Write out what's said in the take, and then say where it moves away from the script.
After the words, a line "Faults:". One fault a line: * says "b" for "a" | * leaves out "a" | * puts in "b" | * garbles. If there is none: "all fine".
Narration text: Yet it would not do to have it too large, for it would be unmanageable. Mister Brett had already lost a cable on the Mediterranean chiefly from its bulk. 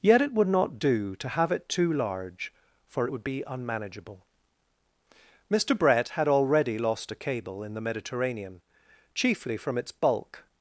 Yet it would not do to have it too large, for it would be unmanageable. Mister Brett had already lost a cable in the Mediterranean chiefly from its bulk.
Faults:
* says "in" for "on"